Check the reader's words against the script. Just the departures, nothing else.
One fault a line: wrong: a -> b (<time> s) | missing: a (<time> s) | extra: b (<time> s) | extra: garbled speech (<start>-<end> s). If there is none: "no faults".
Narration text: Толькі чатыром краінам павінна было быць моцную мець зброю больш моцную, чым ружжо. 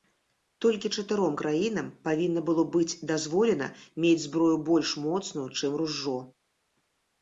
wrong: моцную -> дазволена (3.1 s)